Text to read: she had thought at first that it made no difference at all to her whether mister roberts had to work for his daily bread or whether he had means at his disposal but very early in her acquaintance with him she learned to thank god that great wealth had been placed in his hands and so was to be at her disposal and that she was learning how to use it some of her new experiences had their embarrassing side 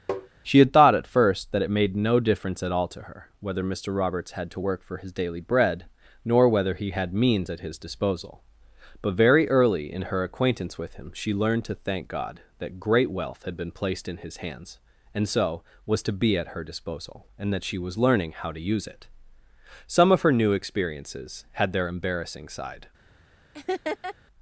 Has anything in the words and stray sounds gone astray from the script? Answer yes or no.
yes